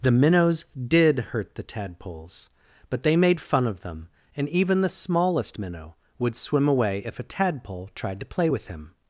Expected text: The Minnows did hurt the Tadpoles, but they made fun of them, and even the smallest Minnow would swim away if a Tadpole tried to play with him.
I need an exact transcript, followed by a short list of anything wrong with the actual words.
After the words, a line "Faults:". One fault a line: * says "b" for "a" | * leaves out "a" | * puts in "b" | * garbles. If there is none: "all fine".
The Minnows did hurt the Tadpoles, but they made fun of them, and even the smallest Minnow would swim away if a Tadpole tried to play with him.
Faults:
all fine